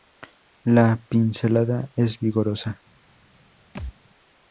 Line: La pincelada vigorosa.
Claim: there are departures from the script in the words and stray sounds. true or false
true